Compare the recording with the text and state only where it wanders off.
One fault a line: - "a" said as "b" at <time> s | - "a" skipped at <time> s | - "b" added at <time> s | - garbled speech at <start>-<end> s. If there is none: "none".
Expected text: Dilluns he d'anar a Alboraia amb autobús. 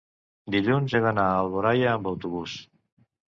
none